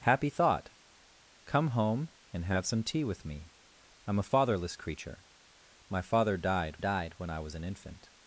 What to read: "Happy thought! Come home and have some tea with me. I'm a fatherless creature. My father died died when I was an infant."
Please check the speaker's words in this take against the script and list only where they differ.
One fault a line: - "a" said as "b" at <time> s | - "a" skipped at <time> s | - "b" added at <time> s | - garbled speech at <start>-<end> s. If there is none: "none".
none